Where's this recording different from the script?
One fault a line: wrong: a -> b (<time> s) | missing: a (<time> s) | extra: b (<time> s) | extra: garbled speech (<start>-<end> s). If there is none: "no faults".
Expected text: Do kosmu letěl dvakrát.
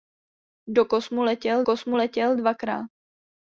extra: kosmu letěl (1.6 s)